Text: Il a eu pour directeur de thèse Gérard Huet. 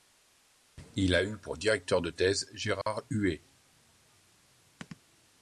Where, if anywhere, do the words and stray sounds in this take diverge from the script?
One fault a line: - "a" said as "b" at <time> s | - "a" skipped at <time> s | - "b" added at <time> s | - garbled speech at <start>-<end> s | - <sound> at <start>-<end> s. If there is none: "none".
- dropout at 2.8-2.9 s